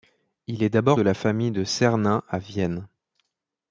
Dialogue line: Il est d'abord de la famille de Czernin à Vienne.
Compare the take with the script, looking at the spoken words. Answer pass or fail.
pass